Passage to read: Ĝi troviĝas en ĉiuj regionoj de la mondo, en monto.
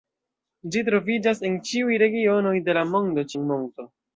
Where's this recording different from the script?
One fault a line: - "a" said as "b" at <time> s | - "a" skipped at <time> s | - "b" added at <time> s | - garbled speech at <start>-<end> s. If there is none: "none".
none